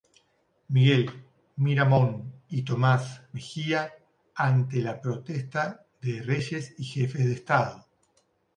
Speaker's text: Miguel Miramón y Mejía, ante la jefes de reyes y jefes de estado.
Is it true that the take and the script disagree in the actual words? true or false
true